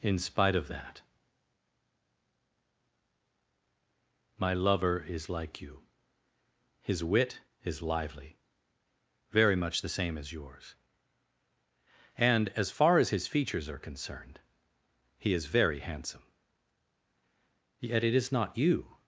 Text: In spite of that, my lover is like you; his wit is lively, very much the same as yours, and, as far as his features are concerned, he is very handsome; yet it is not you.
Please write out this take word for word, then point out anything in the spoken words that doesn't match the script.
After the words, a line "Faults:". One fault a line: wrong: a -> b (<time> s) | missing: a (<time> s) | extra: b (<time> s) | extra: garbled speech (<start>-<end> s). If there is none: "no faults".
In spite of that, my lover is like you; his wit is lively, very much the same as yours, and, as far as his features are concerned, he is very handsome; yet it is not you.
Faults:
no faults